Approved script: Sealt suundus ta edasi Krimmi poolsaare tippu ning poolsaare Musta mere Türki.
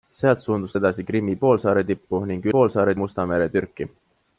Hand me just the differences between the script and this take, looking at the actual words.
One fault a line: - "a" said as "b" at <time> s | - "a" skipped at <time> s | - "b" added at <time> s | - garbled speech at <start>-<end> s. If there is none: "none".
none